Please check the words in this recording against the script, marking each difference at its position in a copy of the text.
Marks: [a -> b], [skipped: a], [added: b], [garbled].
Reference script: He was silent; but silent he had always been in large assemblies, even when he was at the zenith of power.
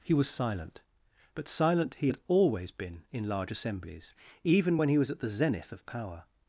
He was silent; but silent he had always been in large assemblies, even when he was at the zenith of power.